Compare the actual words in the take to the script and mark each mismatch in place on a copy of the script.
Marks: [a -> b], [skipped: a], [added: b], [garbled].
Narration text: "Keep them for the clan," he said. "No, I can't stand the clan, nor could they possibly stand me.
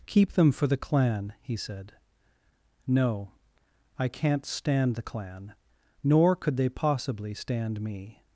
"Keep them for the clan," he said. "No, I can't stand the clan, nor could they possibly stand me.